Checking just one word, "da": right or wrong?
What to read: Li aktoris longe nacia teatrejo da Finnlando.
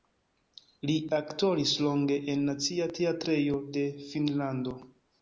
wrong